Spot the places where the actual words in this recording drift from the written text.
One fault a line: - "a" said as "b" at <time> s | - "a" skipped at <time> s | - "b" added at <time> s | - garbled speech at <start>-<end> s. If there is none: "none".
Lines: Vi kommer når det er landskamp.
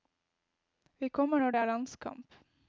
none